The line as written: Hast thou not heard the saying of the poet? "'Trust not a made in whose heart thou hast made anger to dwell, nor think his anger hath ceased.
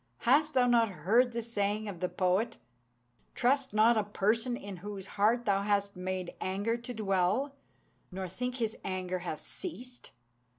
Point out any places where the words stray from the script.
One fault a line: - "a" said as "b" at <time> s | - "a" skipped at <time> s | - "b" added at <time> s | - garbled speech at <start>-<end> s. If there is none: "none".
- "made" said as "person" at 4.0 s